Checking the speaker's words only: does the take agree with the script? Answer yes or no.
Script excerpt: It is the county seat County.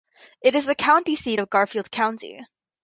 no